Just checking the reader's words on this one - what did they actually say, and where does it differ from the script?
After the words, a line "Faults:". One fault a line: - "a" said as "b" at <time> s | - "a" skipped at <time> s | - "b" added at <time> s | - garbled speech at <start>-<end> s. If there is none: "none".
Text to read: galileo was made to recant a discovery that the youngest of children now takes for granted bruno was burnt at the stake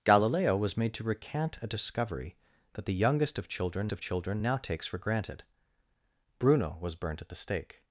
galileo was made to recant a discovery that the youngest of children of children now takes for granted bruno was burnt at the stake
Faults:
- "of children" added at 3.9 s